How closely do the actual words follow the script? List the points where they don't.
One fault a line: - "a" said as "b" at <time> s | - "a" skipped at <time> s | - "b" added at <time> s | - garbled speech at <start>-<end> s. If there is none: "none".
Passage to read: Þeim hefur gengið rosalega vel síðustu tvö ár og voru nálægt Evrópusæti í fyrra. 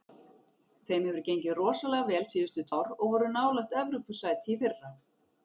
- "tvö" skipped at 2.6 s